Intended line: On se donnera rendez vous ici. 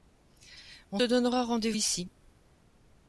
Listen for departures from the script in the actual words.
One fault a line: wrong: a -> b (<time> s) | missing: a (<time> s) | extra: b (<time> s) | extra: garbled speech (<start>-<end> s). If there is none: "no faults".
missing: se (1.0 s)
missing: vous (1.7 s)